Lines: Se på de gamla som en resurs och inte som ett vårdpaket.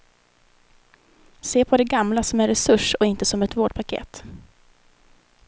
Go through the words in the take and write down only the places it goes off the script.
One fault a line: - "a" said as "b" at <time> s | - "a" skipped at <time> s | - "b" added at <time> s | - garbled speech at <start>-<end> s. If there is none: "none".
none